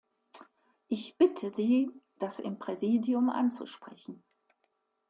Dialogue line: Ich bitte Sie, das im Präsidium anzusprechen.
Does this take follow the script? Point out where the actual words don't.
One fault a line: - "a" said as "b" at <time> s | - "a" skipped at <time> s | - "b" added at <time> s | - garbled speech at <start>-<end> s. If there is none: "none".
none